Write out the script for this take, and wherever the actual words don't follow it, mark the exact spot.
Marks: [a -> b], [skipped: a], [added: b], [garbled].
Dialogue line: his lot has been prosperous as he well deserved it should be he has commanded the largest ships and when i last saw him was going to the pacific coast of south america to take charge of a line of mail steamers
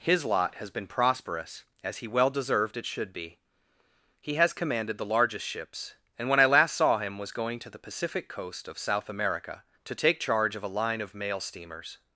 his lot has been prosperous as he well deserved it should be he has commanded the largest ships and when i last saw him was going to the pacific coast of south america to take charge of a line of mail steamers